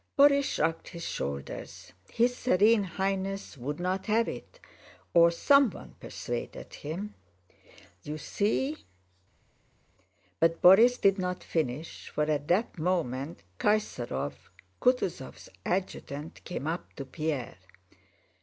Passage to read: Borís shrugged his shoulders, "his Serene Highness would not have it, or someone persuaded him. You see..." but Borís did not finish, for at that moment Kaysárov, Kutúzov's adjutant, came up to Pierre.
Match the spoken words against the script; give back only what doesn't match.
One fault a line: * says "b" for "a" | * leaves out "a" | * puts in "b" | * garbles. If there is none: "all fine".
all fine